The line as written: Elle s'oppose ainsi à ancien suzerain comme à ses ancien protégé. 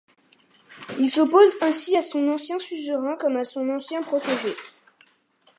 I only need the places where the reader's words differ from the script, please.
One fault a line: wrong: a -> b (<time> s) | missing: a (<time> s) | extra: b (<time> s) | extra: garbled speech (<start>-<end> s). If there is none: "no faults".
wrong: Elle -> Il (1.0 s)
extra: son (2.0 s)
wrong: ses -> son (3.4 s)